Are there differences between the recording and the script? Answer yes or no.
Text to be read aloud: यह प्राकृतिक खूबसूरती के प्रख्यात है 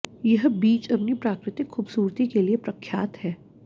yes